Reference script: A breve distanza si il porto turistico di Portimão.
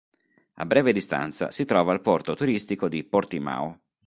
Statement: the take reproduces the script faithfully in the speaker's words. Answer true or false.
false